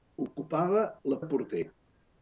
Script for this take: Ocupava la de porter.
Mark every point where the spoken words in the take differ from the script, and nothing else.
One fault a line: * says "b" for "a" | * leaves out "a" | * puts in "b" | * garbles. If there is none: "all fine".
all fine